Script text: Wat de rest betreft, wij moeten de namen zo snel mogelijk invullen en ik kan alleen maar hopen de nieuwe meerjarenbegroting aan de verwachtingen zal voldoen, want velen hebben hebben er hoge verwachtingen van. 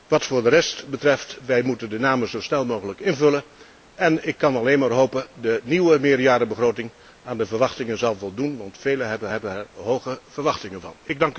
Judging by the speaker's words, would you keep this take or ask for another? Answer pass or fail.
pass